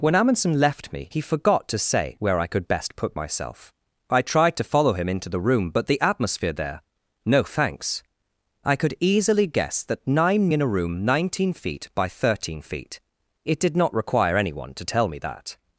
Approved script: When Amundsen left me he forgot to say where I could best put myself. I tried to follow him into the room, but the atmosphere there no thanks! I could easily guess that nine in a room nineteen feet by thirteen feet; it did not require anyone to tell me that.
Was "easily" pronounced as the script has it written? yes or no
yes